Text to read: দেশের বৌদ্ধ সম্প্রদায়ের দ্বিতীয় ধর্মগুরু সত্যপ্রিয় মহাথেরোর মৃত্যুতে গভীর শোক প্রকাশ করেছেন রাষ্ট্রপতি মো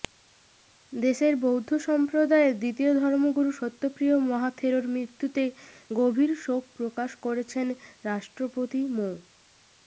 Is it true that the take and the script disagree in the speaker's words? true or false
false